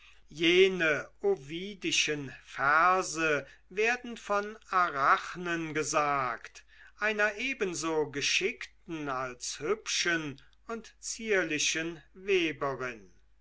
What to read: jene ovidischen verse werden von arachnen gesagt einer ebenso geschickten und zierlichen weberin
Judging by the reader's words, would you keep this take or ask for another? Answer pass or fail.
fail